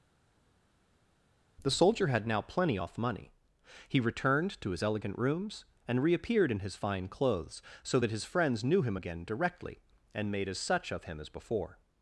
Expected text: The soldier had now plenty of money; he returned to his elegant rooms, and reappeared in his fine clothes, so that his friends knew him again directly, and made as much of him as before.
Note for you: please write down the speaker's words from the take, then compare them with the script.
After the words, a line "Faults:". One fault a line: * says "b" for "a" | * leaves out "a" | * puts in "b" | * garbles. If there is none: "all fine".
The soldier had now plenty off money; he returned to his elegant rooms, and reappeared in his fine clothes, so that his friends knew him again directly, and made as such of him as before.
Faults:
* says "off" for "of"
* says "such" for "much"